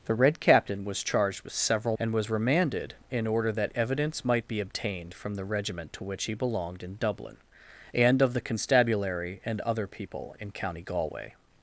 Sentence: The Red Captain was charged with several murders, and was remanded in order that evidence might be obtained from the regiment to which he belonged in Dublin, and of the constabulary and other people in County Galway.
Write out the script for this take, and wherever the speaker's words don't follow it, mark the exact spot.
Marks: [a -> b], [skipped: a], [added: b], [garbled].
The Red Captain was charged with several [skipped: murders,] and was remanded in order that evidence might be obtained from the regiment to which he belonged in Dublin, and of the constabulary and other people in County Galway.